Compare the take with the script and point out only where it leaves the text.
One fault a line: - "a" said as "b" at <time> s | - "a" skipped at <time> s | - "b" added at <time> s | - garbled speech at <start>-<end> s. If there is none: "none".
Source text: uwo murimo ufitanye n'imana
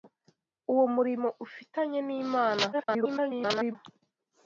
- garbled speech at 2.7-3.8 s